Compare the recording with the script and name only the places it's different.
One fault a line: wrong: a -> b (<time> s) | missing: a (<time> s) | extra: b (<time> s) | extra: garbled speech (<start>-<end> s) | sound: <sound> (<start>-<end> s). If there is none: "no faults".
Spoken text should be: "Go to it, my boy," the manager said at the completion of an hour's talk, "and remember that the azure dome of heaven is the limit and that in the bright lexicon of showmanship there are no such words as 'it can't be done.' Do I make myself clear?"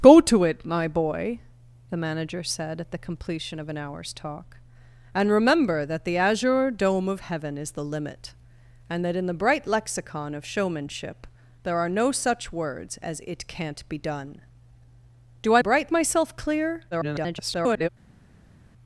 wrong: make -> bright (15.6 s)
extra: garbled speech (16.9-17.9 s)